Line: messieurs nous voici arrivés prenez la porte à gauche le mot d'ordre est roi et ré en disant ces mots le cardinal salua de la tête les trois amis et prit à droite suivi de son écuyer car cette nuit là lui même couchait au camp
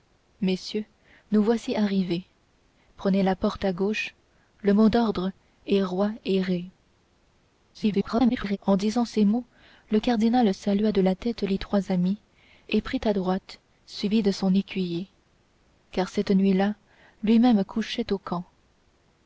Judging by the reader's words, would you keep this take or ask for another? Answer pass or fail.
fail